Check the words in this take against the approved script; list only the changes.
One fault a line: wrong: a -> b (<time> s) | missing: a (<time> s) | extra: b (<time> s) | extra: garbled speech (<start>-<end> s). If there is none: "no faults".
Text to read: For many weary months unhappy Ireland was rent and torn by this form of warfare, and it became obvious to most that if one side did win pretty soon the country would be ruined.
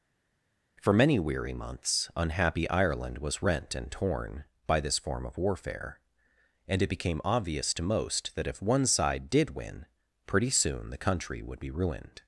no faults